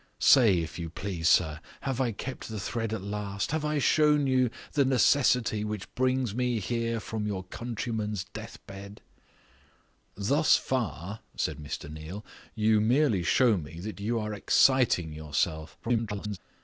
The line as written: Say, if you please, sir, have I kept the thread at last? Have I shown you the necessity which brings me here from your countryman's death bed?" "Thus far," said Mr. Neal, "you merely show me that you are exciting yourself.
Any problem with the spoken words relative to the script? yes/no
yes